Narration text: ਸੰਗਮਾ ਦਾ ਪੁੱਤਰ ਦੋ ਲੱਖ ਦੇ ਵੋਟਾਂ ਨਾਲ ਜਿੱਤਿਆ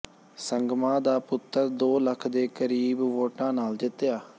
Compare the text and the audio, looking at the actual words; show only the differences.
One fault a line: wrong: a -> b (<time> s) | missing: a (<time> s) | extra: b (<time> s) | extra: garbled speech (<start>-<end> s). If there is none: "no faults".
extra: ਕਰੀਬ (2.5 s)